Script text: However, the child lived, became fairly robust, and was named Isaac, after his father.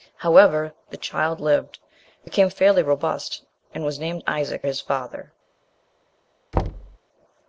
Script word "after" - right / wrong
wrong